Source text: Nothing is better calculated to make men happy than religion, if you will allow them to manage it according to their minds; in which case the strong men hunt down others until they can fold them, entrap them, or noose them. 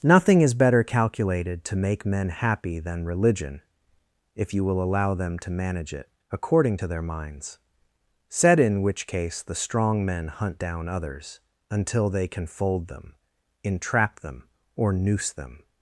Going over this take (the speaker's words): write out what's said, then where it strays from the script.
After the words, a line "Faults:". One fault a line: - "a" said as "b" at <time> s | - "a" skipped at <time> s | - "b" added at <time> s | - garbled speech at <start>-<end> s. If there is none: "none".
Nothing is better calculated to make men happy than religion, if you will allow them to manage it according to their minds; said in which case the strong men hunt down others until they can fold them, entrap them, or noose them.
Faults:
- "said" added at 8.3 s